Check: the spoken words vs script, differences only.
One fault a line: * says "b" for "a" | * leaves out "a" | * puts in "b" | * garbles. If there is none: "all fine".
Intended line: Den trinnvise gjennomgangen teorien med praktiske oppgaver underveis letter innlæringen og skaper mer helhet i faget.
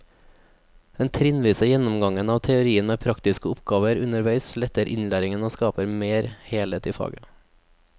* puts in "av"